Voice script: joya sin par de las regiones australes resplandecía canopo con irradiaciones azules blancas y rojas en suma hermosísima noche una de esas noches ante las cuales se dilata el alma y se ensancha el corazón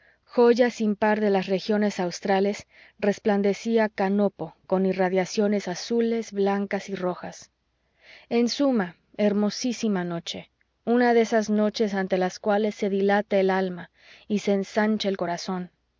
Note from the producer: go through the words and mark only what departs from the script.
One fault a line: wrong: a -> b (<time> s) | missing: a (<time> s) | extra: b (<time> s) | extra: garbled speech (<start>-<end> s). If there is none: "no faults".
no faults